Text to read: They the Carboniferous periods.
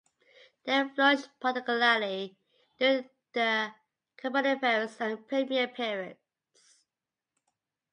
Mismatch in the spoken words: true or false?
true